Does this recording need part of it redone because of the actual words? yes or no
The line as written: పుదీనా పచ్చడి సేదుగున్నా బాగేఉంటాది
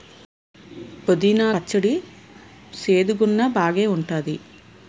no